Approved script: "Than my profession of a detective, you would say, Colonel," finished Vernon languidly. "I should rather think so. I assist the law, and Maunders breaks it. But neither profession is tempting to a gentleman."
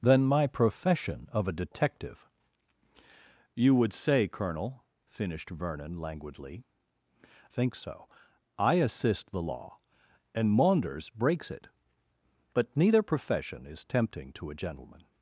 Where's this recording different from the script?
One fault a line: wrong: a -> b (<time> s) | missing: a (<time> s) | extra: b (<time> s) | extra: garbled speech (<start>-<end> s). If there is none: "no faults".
missing: I should rather (6.6 s)